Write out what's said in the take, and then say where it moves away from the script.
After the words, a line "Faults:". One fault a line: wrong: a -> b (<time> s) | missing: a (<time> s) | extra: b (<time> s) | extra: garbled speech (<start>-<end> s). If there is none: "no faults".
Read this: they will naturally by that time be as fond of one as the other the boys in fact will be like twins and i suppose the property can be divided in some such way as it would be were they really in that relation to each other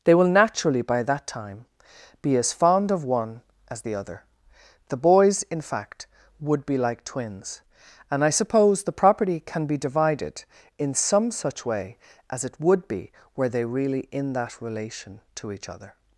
they will naturally by that time be as fond of one as the other the boys in fact would be like twins and i suppose the property can be divided in some such way as it would be were they really in that relation to each other
Faults:
wrong: will -> would (6.4 s)